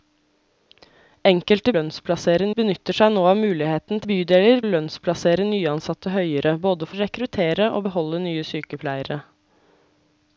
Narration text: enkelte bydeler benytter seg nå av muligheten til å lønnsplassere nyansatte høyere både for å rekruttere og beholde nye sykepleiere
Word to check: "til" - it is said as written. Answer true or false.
false